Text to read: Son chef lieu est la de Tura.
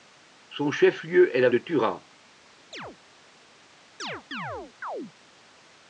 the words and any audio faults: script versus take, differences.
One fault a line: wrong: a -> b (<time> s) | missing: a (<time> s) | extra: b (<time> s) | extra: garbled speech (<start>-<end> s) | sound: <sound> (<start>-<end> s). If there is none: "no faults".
sound: chirp (2.7-3.0 s)
sound: chirp (4.0-5.1 s)